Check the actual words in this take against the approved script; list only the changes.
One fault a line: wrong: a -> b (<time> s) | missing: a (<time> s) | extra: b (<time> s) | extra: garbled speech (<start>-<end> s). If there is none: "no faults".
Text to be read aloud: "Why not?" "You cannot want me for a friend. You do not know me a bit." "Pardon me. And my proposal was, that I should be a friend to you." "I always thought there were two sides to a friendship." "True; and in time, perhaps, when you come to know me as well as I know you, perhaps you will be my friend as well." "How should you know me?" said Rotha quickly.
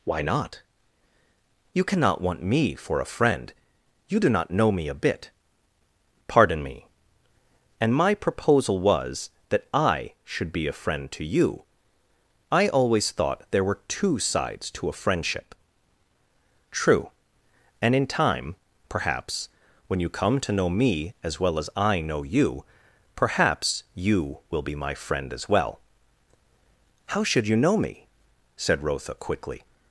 no faults